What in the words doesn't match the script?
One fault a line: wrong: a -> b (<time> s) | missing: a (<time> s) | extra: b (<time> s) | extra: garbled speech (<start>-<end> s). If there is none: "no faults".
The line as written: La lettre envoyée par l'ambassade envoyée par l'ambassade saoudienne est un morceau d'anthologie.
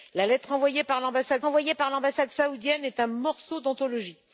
no faults